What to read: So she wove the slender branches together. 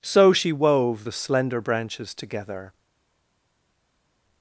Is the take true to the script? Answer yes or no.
yes